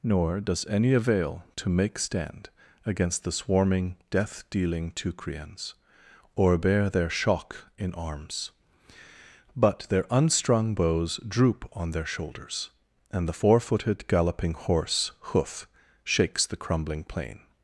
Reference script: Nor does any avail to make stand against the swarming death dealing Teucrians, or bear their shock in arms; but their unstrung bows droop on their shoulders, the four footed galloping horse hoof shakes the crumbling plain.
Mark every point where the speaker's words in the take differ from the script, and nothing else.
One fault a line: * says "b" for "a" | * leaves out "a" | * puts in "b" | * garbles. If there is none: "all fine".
* puts in "and"